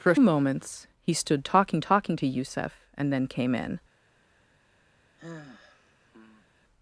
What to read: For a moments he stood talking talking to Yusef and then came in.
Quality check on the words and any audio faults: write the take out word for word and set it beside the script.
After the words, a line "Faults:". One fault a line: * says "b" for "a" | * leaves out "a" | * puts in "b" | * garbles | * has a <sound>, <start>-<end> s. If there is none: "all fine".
For a moments he stood talking talking to Yusef and then came in.
Faults:
* has a sigh, 5.2-6.5 s